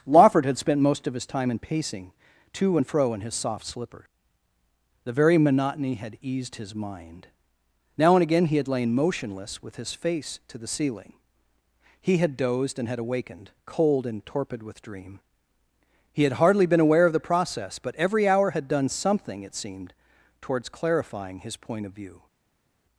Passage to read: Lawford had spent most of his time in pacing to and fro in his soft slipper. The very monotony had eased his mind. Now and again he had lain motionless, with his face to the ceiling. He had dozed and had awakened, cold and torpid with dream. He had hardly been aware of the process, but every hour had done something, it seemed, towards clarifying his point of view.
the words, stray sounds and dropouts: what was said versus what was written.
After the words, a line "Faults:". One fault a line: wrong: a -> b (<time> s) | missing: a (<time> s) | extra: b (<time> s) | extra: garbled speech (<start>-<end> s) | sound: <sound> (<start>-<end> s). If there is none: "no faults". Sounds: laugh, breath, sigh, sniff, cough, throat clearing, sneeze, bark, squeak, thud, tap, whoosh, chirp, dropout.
Lawford had spent most of his time in pacing to and fro in his soft slipper. The very monotony had eased his mind. Now and again he had lain motionless, with his face to the ceiling. He had dozed and had awakened, cold and torpid with dream. He had hardly been aware of the process, but every hour had done something, it seemed, towards clarifying his point of view.
Faults:
no faults